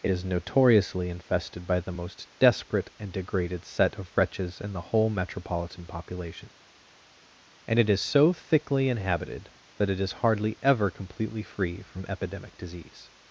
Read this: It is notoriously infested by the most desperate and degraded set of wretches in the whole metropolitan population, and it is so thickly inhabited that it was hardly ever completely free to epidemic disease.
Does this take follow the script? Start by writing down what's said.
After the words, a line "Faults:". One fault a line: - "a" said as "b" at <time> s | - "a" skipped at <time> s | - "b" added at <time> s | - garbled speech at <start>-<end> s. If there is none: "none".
It is notoriously infested by the most desperate and degraded set of wretches in the whole metropolitan population, and it is so thickly inhabited that it is hardly ever completely free from epidemic disease.
Faults:
- "was" said as "is" at 10.0 s
- "to" said as "from" at 11.8 s